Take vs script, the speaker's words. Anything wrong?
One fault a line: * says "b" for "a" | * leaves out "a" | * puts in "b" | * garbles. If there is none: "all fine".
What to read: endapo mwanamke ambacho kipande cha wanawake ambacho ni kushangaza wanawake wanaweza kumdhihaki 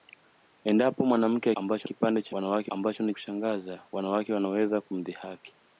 all fine